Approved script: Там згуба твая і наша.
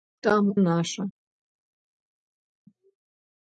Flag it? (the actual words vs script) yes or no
yes